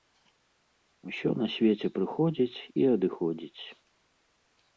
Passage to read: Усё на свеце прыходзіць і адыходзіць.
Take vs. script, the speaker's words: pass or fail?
pass